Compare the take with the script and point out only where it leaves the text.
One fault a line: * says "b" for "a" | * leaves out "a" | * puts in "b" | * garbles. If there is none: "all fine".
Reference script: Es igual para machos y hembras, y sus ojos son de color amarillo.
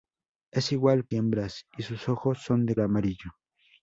* leaves out "para machos"
* leaves out "color"